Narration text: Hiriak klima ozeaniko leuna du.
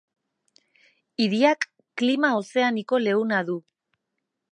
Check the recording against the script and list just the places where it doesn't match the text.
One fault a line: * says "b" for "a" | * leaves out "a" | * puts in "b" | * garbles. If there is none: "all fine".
all fine